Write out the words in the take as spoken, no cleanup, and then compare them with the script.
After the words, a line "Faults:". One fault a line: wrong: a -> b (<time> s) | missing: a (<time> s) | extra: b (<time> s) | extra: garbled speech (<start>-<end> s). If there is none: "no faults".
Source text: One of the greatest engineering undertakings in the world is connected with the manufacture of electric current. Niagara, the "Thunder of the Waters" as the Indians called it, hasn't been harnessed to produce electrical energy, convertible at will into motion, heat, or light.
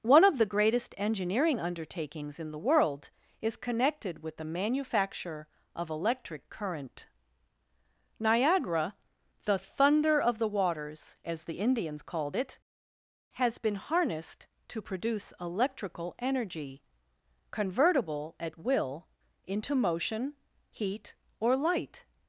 One of the greatest engineering undertakings in the world is connected with the manufacture of electric current. Niagara, the "Thunder of the Waters" as the Indians called it, has been harnessed to produce electrical energy, convertible at will into motion, heat, or light.
Faults:
wrong: hasn't -> has (13.3 s)